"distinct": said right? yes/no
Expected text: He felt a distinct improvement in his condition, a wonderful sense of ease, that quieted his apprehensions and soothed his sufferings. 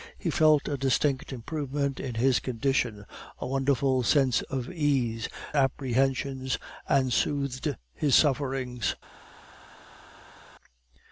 yes